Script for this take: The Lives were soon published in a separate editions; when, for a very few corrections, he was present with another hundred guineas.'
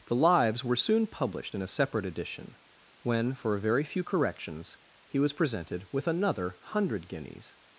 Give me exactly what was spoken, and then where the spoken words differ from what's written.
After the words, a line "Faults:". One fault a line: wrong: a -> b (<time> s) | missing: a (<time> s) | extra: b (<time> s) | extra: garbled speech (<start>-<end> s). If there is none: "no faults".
The Lives were soon published in a separate edition; when, for a very few corrections, he was presented with another hundred guineas.'
Faults:
wrong: editions -> edition (2.1 s)
wrong: present -> presented (5.3 s)